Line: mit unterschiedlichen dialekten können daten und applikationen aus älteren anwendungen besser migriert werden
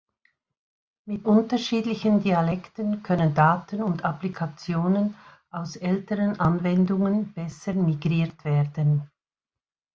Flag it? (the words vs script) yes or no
no